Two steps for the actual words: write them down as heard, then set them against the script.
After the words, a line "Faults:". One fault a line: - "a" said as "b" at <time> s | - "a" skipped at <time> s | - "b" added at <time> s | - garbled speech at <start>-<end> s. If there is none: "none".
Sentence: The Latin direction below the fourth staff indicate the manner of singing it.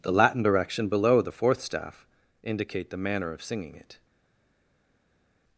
The Latin direction below the fourth staff indicate the manner of singing it.
Faults:
none